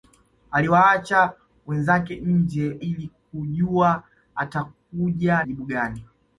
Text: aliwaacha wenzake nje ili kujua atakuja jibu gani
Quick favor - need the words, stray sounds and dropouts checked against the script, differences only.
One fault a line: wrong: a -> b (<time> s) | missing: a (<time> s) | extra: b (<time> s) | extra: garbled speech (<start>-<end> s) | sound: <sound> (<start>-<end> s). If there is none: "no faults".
no faults